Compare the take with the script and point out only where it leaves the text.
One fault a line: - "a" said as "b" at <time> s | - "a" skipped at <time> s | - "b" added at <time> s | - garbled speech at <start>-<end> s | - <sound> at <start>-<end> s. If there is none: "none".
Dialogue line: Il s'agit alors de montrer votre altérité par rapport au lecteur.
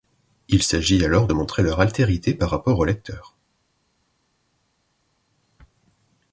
- "votre" said as "leur" at 1.6 s